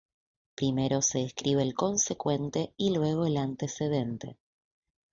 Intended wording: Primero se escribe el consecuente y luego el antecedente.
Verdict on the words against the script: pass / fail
pass